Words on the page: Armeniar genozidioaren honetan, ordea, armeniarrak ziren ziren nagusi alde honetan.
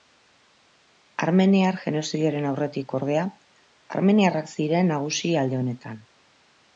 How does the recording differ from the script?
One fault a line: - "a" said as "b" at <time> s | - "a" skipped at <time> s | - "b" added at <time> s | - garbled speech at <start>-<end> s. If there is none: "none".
- "honetan" said as "aurretik" at 2.5 s
- "ziren" skipped at 4.9 s